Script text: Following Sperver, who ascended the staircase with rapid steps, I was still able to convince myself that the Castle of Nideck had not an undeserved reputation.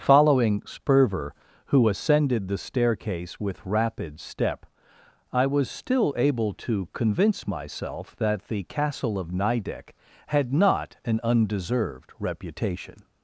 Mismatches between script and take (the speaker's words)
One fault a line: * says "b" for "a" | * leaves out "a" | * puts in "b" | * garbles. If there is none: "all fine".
* says "step" for "steps"